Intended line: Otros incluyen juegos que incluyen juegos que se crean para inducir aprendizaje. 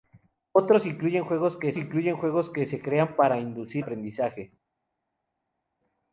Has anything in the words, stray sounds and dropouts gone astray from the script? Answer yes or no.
no